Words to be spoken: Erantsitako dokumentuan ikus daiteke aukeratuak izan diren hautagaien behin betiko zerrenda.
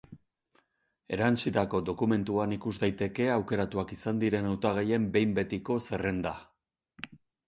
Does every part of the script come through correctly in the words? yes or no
yes